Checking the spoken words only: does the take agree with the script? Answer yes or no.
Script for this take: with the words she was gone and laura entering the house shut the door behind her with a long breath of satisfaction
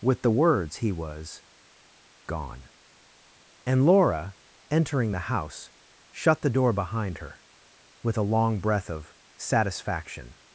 no